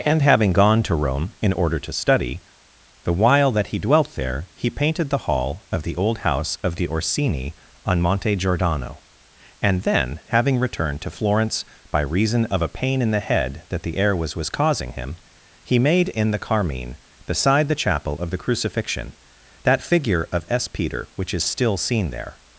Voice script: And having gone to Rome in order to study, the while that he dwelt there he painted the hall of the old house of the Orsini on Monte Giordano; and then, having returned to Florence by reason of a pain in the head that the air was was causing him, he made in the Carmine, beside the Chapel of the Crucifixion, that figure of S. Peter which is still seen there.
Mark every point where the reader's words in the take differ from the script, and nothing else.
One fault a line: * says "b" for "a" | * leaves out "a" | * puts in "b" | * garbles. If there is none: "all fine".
all fine